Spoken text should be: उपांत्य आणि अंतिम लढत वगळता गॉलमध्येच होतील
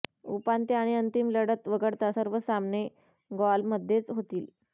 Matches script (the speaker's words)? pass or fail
fail